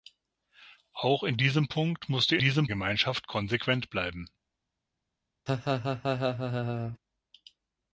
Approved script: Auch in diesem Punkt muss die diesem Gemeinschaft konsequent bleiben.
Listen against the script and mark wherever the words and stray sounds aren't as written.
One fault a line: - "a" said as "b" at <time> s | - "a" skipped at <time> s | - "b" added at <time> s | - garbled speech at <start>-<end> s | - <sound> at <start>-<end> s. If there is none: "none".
- laugh at 5.5-7.0 s